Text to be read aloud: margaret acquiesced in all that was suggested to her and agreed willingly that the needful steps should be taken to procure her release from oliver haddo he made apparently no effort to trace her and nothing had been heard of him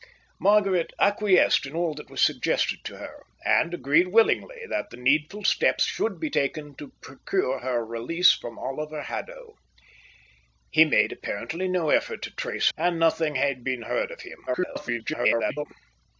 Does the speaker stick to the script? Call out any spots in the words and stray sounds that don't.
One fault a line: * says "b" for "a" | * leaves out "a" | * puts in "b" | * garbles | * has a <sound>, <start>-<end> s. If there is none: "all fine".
* leaves out "her"
* garbles